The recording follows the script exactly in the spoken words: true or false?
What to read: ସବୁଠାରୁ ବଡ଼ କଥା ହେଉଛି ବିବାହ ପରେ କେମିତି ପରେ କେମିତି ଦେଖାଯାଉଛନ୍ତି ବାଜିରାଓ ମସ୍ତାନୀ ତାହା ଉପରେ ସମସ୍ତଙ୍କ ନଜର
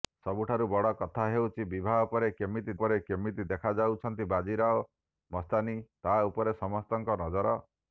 true